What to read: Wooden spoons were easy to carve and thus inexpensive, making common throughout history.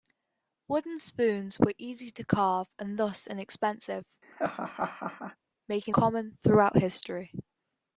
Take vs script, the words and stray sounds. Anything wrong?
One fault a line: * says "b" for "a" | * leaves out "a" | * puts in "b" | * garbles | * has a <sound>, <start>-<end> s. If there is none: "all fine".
* has a laugh, 4.2-5.4 s